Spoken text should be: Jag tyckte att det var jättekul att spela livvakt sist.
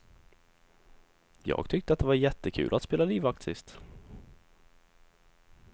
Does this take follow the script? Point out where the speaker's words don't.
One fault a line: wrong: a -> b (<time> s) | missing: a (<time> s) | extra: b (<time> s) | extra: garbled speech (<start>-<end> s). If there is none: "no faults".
no faults